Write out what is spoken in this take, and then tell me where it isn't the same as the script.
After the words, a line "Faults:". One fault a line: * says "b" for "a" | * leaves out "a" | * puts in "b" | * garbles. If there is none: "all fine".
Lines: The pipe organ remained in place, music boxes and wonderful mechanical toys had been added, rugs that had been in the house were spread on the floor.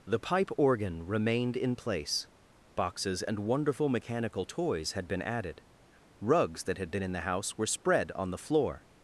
The pipe organ remained in place, boxes and wonderful mechanical toys had been added, rugs that had been in the house were spread on the floor.
Faults:
* leaves out "music"